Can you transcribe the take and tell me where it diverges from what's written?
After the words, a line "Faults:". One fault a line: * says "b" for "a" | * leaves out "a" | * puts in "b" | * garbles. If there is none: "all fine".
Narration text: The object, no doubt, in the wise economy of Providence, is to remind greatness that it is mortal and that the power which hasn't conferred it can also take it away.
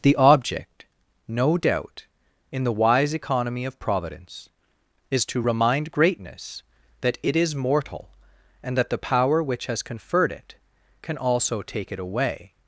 The object, no doubt, in the wise economy of Providence, is to remind greatness that it is mortal and that the power which has conferred it can also take it away.
Faults:
* says "has" for "hasn't"